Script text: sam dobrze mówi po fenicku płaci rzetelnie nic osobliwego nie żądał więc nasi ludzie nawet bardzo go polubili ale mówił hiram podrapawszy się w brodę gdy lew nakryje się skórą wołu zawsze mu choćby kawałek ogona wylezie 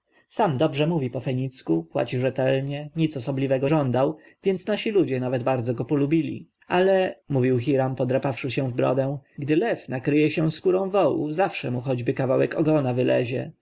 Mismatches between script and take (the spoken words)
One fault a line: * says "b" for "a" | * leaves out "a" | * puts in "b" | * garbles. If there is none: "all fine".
* leaves out "nie"